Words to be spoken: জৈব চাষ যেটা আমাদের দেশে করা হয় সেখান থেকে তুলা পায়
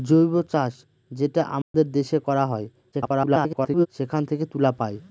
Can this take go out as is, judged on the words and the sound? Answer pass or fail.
fail